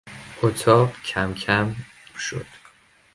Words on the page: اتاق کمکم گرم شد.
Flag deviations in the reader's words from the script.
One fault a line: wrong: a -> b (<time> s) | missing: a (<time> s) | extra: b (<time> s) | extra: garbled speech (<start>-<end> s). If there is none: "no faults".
missing: گرم (1.8 s)